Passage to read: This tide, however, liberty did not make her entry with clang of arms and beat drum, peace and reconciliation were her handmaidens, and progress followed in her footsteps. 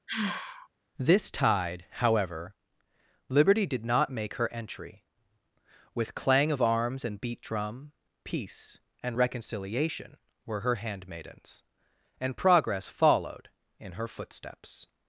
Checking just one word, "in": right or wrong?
right